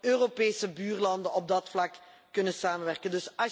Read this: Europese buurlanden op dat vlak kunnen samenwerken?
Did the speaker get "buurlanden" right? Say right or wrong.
right